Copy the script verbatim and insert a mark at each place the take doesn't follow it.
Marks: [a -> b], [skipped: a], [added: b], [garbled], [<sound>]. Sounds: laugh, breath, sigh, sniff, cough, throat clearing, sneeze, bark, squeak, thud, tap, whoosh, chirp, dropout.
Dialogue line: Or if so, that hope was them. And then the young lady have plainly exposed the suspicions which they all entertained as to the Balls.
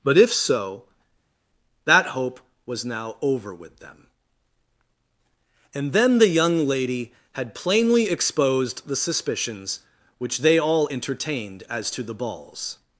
[Or -> But] if so, that hope was [added: now over with] them. And then the young lady [have -> had] plainly exposed the suspicions which they all entertained as to the Balls.